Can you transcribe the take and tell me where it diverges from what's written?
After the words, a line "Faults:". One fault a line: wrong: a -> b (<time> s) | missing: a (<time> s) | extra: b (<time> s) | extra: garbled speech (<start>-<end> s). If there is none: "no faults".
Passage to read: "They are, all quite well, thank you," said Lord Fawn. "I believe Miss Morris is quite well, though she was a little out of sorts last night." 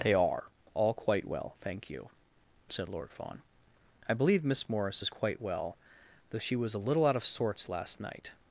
"They are, all quite well, thank you," said Lord Fawn. "I believe Miss Morris is quite well, though she was a little out of sorts last night."
Faults:
no faults